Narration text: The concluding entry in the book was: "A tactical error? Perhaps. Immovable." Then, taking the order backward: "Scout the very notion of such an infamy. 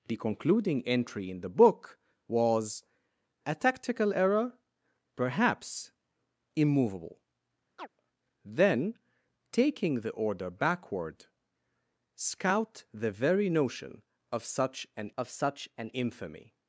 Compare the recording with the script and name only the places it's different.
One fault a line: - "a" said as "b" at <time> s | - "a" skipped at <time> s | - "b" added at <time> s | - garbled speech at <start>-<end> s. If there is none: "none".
- "of such an" added at 15.2 s